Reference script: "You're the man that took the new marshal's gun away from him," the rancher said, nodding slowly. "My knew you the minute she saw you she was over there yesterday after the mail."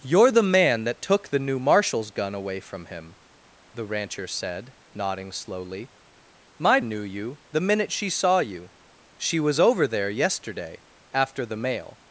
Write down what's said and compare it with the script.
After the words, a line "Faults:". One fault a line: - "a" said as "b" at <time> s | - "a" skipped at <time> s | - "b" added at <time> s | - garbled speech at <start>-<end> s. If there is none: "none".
"You're the man that took the new marshal's gun away from him," the rancher said, nodding slowly. "My knew you the minute she saw you she was over there yesterday after the mail."
Faults:
none